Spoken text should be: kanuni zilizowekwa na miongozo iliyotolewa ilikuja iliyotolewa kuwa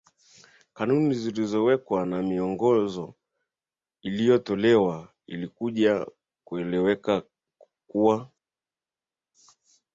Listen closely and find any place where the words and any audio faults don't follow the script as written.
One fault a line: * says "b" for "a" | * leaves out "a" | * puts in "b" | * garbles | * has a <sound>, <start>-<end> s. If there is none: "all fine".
* says "kueleweka" for "iliyotolewa"